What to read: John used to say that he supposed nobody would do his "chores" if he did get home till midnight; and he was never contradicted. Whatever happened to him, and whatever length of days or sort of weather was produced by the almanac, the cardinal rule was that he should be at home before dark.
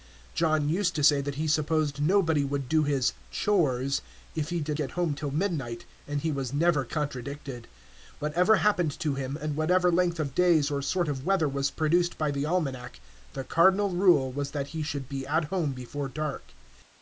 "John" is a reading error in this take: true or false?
false